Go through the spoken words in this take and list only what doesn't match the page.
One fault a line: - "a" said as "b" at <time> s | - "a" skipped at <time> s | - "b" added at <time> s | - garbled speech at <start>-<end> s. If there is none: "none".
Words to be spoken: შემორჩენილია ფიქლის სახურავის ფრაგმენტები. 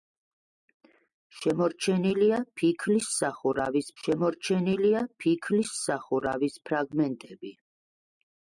- "შემორჩენილია ფიქლის სახურავის" added at 4.0 s